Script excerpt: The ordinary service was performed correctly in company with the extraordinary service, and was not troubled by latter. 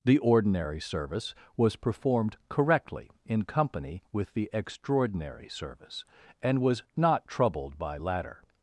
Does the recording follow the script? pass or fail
pass